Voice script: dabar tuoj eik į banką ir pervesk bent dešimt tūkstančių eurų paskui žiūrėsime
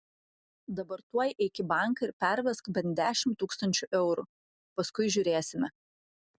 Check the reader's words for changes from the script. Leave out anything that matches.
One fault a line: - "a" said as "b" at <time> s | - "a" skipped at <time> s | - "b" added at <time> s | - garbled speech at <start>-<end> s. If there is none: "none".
none